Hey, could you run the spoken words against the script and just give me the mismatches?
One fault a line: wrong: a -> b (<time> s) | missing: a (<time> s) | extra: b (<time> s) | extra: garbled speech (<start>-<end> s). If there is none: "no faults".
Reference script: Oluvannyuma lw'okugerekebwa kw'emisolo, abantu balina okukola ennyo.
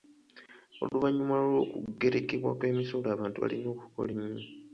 no faults